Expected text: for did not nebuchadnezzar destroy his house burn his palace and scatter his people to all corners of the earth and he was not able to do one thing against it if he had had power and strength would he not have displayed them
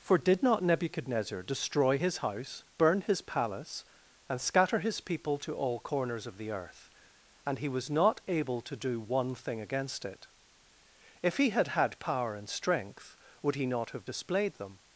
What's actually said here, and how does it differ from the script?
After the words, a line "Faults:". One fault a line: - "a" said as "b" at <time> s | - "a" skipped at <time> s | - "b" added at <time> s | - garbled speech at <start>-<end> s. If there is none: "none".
for did not nebuchadnezzar destroy his house burn his palace and scatter his people to all corners of the earth and he was not able to do one thing against it if he had had power and strength would he not have displayed them
Faults:
none